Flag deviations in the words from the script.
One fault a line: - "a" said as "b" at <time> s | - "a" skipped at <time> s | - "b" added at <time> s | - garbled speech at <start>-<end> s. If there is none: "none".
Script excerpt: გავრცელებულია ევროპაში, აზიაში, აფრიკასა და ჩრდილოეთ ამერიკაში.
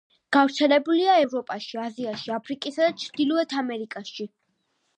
none